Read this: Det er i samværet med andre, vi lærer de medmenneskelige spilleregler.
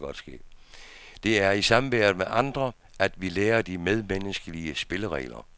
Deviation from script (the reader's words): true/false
true